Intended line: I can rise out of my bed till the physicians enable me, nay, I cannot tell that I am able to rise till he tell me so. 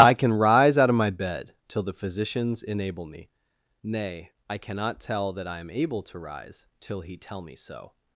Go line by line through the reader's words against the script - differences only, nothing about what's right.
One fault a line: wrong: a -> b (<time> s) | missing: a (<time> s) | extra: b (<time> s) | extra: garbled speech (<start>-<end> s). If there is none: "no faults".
no faults